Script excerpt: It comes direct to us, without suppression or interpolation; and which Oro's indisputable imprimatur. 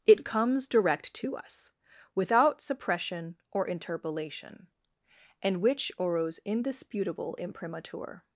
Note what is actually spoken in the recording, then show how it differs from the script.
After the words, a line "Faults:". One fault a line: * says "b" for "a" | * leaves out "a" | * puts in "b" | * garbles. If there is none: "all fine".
It comes direct to us, without suppression or interpolation; and which Oro's indisputable imprimatur.
Faults:
all fine